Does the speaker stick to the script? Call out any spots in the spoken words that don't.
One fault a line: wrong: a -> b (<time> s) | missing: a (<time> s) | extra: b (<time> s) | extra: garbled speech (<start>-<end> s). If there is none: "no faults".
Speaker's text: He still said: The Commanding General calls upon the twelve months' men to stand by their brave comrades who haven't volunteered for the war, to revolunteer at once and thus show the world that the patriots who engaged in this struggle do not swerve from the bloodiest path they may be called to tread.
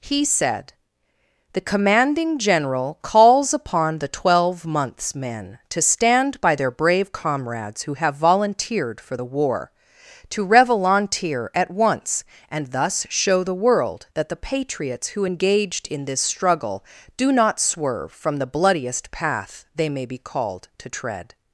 missing: still (0.2 s)
wrong: haven't -> have (7.9 s)